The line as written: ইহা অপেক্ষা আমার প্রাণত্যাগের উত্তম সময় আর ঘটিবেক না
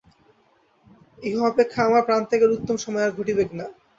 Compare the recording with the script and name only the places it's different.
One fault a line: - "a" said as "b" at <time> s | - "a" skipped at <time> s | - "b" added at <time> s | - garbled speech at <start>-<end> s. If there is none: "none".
none